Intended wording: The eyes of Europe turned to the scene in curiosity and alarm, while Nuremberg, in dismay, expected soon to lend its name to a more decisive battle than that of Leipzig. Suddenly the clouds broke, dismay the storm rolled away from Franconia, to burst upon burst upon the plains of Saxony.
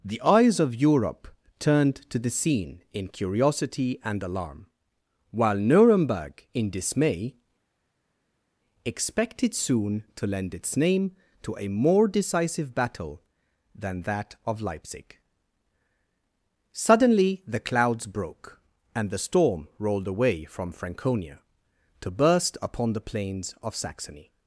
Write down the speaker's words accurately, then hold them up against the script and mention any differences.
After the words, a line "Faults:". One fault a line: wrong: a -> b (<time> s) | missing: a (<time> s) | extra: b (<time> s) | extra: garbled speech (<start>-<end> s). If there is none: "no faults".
The eyes of Europe turned to the scene in curiosity and alarm, while Nuremberg, in dismay, expected soon to lend its name to a more decisive battle than that of Leipzig. Suddenly the clouds broke, and the storm rolled away from Franconia, to burst upon the plains of Saxony.
Faults:
wrong: dismay -> and (18.9 s)
missing: burst upon (22.9 s)